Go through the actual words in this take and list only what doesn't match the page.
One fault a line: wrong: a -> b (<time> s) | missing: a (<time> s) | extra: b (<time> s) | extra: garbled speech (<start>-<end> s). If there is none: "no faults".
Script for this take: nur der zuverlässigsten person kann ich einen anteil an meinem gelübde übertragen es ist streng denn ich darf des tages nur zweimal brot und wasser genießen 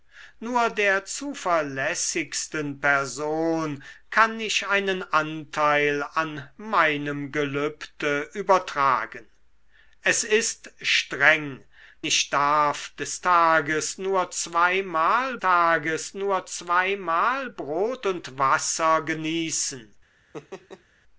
missing: denn (11.6 s)
extra: tages nur zweimal (15.4 s)